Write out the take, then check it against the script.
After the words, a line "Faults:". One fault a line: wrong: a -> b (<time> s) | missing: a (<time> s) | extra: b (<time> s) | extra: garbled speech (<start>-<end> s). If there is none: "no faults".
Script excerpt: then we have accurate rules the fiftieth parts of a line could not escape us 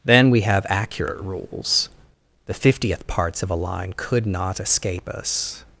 then we have accurate rules the fiftieth parts of a line could not escape us
Faults:
no faults